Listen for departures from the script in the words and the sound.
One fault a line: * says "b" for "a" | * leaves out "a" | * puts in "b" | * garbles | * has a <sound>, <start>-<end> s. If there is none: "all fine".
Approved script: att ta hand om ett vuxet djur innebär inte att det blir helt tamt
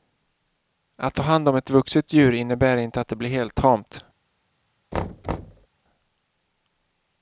* has a thud, 4.9-5.7 s